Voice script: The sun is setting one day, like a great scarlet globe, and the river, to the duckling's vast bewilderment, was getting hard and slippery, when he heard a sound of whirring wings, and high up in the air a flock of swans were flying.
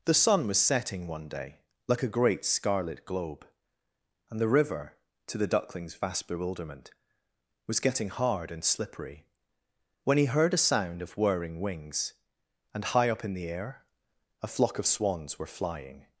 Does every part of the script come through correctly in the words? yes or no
no